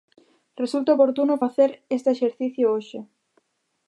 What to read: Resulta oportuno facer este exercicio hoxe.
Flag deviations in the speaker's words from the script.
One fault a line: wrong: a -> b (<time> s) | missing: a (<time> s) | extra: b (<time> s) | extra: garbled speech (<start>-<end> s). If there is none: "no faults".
no faults